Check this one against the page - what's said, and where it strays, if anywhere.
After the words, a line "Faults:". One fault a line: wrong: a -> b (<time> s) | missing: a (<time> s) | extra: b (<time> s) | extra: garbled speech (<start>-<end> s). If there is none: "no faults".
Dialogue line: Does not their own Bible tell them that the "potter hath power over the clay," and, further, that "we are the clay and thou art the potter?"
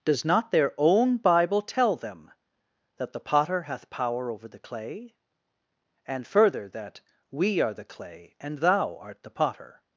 Does not their own Bible tell them that the "potter hath power over the clay," and, further, that "we are the clay and thou art the potter?"
Faults:
no faults